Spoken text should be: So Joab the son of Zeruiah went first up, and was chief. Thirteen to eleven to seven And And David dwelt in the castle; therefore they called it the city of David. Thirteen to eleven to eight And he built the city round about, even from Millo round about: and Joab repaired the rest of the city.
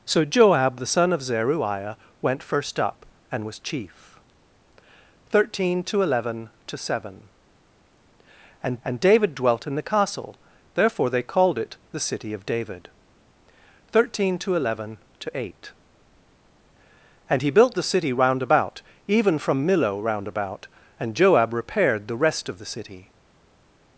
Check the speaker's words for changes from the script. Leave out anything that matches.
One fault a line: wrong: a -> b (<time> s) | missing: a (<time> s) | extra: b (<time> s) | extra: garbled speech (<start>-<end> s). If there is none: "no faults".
no faults